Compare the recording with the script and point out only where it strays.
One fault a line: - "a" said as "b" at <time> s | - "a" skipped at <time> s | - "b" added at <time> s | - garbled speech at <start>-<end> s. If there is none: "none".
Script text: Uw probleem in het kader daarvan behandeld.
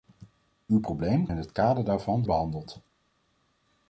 none